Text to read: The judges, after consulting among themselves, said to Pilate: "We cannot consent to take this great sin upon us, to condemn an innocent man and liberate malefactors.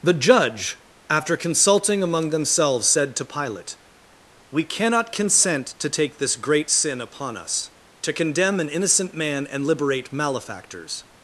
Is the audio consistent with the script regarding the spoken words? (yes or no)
no